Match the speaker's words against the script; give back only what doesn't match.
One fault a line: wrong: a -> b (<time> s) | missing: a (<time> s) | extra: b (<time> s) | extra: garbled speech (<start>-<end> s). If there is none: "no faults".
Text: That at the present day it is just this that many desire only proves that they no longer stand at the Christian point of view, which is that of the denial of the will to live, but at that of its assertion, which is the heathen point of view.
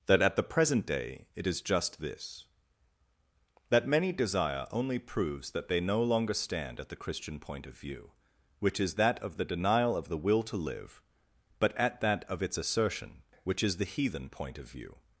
no faults